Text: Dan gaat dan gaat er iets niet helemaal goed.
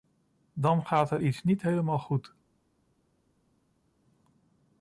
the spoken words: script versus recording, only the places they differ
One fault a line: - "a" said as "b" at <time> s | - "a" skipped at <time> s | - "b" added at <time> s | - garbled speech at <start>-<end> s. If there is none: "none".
- "dan gaat" skipped at 1.1 s